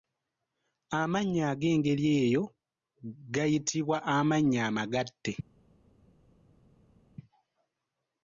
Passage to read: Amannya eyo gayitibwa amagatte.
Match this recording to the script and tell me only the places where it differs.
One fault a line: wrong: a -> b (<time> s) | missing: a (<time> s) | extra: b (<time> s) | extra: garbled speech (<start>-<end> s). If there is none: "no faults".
extra: ag'engeri (1.5 s)
extra: amannya (4.2 s)